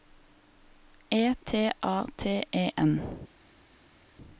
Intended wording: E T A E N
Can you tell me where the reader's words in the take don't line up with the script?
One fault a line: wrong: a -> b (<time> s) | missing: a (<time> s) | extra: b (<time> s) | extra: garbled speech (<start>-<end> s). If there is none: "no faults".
extra: T (2.2 s)